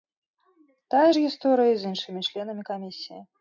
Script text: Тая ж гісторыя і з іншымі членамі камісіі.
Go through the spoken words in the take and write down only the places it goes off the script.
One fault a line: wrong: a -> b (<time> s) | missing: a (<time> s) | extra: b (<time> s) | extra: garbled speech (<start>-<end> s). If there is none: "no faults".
no faults